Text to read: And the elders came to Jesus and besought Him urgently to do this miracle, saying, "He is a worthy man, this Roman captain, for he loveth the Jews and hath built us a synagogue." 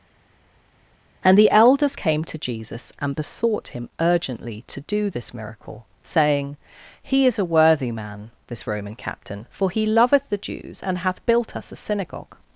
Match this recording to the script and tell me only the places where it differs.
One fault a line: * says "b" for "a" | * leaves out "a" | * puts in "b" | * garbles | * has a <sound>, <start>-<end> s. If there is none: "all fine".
all fine